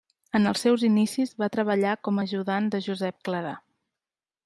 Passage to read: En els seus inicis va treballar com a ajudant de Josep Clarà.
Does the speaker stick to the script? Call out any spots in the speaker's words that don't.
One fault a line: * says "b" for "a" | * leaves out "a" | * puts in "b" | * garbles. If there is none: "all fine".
all fine